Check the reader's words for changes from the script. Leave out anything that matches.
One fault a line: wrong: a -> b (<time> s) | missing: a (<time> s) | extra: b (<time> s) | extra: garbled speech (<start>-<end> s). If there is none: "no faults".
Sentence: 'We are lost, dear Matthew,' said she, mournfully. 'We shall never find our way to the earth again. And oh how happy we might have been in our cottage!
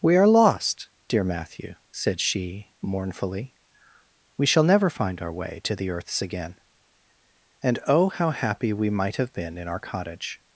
wrong: earth -> earths (5.9 s)